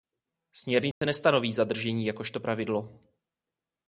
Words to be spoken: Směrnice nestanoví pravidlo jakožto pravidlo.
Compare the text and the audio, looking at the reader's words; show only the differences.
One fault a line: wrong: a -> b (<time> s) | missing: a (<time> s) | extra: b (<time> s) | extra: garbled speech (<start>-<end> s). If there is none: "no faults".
wrong: pravidlo -> zadržení (1.5 s)